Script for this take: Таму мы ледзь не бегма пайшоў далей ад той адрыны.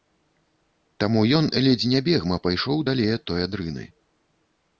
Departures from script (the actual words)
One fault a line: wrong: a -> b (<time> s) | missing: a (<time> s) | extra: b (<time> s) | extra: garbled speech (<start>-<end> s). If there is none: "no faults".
wrong: мы -> ён (1.4 s)